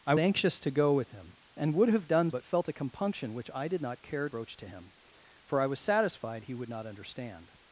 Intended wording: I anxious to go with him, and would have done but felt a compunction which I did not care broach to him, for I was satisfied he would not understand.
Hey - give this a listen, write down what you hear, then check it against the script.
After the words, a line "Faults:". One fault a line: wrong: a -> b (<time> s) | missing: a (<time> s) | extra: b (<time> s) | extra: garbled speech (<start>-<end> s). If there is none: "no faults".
I anxious to go with him, and would have done but felt a compunction which I did not care broach to him, for I was satisfied he would not understand.
Faults:
no faults